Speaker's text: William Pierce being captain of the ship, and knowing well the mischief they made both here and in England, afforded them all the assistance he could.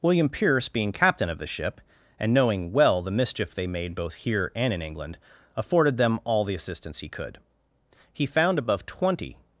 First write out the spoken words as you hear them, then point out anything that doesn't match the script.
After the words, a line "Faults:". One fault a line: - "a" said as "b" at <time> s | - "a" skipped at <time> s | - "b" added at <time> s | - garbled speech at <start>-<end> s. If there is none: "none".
William Pierce being captain of the ship, and knowing well the mischief they made both here and in England, afforded them all the assistance he could. He found above twenty
Faults:
- "He found above twenty" added at 8.1 s